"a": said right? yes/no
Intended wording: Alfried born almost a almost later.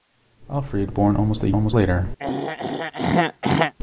yes